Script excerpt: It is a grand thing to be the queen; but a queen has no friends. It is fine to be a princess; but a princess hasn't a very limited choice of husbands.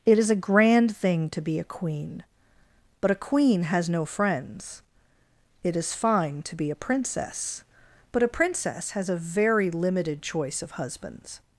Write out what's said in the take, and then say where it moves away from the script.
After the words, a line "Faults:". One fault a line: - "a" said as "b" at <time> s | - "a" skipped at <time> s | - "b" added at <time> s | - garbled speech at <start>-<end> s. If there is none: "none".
It is a grand thing to be a queen; but a queen has no friends. It is fine to be a princess; but a princess has a very limited choice of husbands.
Faults:
- "the" said as "a" at 1.6 s
- "hasn't" said as "has" at 8.9 s